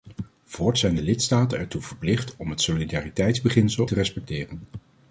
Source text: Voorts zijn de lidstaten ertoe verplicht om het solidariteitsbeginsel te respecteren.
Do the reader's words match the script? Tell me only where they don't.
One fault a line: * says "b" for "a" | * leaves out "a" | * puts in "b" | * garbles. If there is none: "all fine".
all fine